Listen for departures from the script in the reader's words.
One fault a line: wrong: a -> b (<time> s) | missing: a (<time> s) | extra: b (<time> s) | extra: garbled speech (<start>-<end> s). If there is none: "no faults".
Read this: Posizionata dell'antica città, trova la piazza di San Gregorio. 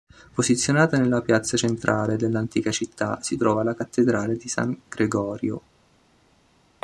extra: nella piazza centrale (1.0 s)
extra: si (3.2 s)
wrong: piazza -> cattedrale (3.8 s)